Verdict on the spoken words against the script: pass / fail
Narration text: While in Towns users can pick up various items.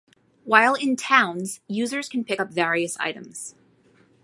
pass